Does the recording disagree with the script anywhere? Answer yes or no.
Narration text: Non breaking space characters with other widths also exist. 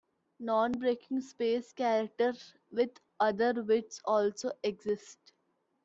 no